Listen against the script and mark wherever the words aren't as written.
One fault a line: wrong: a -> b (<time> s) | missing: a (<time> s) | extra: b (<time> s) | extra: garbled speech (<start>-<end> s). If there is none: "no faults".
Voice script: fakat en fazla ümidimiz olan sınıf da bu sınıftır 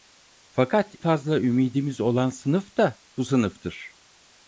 missing: en (0.9 s)